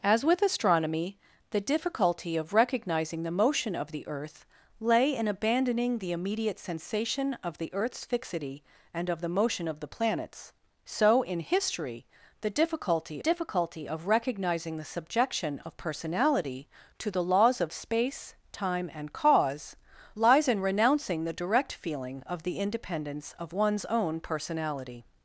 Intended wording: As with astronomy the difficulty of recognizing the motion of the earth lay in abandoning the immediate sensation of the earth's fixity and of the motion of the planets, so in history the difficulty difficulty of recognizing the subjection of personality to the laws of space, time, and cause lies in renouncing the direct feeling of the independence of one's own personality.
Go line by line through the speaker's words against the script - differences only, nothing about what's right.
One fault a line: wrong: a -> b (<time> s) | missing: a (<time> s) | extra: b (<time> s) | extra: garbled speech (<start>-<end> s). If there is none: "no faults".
no faults